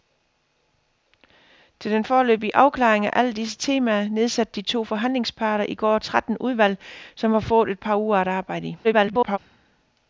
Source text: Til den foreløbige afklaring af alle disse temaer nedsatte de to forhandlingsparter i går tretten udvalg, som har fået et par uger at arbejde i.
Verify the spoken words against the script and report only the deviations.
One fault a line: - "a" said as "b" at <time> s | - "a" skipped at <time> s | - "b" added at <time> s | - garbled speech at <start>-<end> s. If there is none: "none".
- garbled speech at 8.8-9.4 s